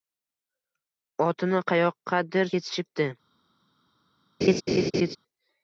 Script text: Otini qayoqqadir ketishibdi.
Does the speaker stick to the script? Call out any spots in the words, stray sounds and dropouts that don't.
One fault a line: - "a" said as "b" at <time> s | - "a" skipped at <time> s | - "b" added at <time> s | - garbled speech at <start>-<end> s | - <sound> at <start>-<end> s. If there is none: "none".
- laugh at 4.4-5.2 s